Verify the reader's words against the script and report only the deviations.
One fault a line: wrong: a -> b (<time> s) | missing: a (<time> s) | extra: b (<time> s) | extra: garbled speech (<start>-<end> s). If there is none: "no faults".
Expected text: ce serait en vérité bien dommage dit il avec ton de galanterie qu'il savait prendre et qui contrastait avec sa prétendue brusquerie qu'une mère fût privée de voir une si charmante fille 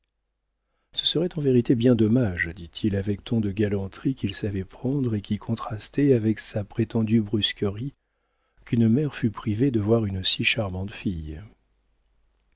no faults